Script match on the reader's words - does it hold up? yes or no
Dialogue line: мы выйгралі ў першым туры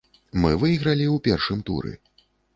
yes